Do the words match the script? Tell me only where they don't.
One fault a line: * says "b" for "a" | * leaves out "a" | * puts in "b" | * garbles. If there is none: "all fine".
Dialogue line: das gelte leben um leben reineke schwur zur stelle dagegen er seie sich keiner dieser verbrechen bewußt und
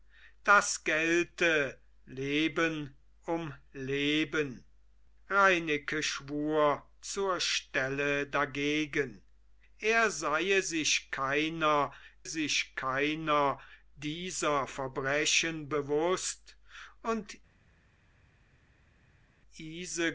* puts in "sich keiner"